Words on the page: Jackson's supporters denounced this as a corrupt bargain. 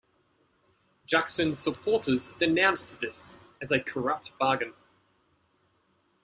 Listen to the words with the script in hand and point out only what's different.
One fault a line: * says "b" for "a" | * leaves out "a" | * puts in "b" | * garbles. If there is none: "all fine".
all fine